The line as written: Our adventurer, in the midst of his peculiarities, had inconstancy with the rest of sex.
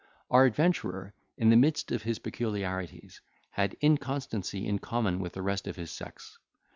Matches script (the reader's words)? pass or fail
fail